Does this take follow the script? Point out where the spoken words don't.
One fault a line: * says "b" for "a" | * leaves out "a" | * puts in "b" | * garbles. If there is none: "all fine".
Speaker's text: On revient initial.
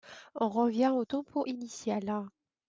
* puts in "au tempo"